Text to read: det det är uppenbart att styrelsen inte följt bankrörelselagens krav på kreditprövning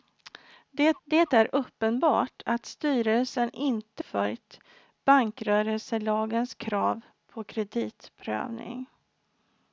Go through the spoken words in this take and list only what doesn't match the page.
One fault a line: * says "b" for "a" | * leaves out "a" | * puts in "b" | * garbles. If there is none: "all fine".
all fine